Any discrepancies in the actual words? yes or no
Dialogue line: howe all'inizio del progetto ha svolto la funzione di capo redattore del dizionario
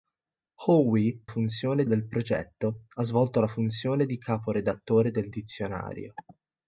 yes